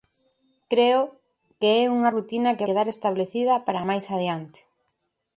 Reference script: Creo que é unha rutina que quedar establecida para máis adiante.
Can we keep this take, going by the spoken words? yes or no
yes